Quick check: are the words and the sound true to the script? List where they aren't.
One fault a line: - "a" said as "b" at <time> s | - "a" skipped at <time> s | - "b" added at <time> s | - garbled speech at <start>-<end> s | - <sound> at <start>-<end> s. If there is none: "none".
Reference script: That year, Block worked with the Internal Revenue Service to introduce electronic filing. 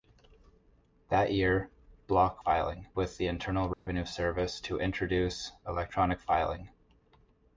- "worked" said as "filing" at 2.4 s
- dropout at 3.7-3.9 s